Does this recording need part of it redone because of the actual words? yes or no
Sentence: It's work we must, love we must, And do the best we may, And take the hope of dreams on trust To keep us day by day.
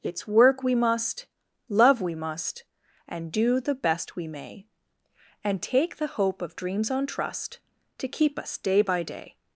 no